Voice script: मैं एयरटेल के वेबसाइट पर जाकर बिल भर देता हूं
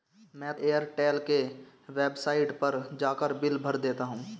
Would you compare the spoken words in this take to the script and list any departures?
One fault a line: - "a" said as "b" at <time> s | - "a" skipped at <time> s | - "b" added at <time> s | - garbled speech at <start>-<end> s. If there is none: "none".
none